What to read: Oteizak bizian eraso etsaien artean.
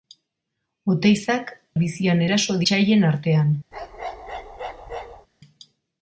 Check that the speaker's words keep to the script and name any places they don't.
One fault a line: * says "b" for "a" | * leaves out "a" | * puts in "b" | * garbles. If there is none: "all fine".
all fine